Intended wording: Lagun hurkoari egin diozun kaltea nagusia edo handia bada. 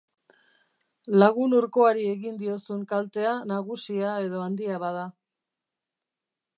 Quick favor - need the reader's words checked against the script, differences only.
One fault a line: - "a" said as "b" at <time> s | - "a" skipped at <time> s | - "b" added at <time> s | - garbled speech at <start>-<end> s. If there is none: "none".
none